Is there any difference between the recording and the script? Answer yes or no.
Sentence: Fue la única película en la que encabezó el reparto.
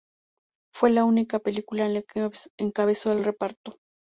yes